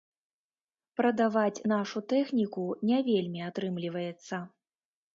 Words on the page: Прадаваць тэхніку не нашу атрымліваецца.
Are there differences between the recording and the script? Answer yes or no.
yes